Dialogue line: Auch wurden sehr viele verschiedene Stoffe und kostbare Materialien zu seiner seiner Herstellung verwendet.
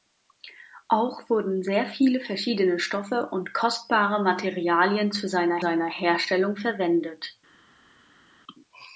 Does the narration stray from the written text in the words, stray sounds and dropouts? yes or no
no